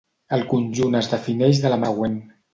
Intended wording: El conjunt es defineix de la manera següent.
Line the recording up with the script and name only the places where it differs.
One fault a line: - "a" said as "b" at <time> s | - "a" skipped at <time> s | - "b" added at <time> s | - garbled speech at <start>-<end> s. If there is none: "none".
- "manera" skipped at 1.8 s